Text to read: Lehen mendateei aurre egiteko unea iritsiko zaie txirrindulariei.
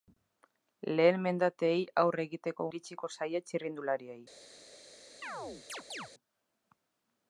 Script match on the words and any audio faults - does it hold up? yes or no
no